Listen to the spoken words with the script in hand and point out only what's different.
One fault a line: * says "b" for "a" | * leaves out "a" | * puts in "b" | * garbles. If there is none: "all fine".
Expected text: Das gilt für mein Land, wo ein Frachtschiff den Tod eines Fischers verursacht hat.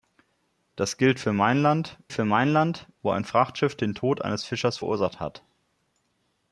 * puts in "für mein Land"